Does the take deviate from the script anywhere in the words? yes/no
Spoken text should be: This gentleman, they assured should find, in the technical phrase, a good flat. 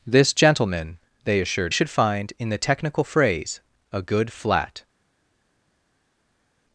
no